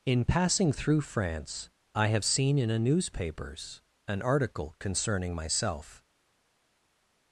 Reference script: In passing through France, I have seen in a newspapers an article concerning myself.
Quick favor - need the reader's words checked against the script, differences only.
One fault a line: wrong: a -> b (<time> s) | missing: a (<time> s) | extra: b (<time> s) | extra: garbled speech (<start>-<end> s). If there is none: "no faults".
no faults